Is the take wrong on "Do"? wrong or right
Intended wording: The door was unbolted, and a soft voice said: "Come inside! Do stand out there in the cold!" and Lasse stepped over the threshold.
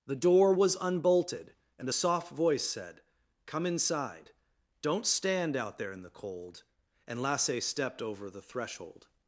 wrong